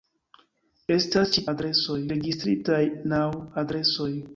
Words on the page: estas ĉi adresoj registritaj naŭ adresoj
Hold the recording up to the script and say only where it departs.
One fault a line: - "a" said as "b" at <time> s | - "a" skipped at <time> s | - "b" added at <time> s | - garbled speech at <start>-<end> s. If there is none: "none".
none